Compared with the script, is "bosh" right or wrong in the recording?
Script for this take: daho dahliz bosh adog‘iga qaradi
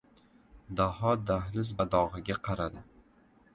wrong